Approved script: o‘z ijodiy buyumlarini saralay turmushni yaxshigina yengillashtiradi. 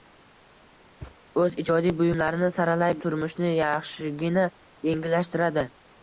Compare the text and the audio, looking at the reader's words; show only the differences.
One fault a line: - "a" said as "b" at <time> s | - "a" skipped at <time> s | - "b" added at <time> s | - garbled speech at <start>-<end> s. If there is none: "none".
none